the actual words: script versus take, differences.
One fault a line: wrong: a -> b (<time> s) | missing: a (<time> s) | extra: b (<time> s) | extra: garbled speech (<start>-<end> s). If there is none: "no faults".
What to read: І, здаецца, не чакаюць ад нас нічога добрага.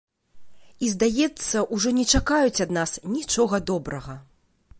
extra: ужо (1.8 s)